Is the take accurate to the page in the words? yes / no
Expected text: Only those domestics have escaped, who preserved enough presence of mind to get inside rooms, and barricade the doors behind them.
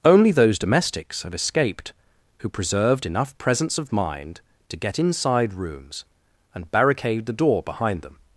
no